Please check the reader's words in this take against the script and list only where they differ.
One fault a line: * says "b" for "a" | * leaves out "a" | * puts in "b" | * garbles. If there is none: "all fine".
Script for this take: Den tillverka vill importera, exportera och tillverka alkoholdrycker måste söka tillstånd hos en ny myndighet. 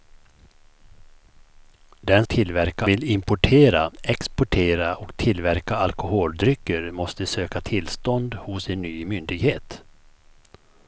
all fine